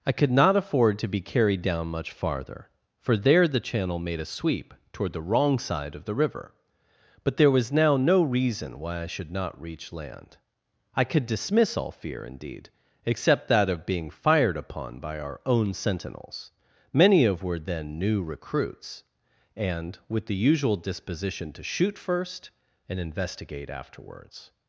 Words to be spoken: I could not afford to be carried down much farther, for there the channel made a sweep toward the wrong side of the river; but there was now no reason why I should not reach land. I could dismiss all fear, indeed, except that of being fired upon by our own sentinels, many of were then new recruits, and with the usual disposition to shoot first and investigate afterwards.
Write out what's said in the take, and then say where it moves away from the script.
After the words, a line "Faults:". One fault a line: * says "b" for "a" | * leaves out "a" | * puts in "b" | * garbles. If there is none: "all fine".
I could not afford to be carried down much farther, for there the channel made a sweep toward the wrong side of the river; but there was now no reason why I should not reach land. I could dismiss all fear, indeed, except that of being fired upon by our own sentinels, many of were then new recruits, and with the usual disposition to shoot first and investigate afterwards.
Faults:
all fine